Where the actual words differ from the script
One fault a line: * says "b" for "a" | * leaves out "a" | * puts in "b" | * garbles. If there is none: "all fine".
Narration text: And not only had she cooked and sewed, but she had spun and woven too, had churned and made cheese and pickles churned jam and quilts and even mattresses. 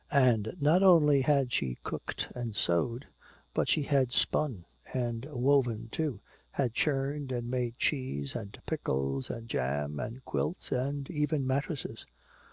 * says "and" for "churned"